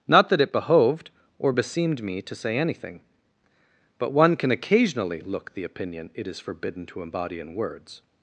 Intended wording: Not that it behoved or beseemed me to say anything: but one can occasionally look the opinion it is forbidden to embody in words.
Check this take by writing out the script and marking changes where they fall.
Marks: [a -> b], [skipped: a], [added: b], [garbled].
Not that it behoved or beseemed me to say anything: but one can occasionally look the opinion it is forbidden to embody in words.